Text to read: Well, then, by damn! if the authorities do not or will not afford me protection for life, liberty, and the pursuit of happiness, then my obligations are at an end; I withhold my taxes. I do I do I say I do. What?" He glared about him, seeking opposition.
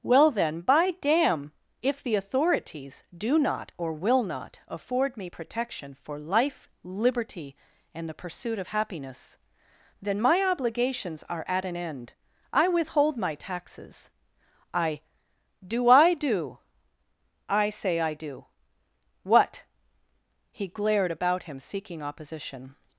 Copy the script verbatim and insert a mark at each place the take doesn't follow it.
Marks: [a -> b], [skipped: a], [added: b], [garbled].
Well, then, by damn! if the authorities do not or will not afford me protection for life, liberty, and the pursuit of happiness, then my obligations are at an end; I withhold my taxes. I do I do I say I do. What?" He glared about him, seeking opposition.